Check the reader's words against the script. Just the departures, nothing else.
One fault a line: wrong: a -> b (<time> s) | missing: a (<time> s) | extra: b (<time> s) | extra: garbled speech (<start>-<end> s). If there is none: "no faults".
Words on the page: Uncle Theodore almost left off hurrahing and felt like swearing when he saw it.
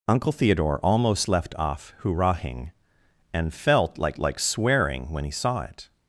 extra: like (4.2 s)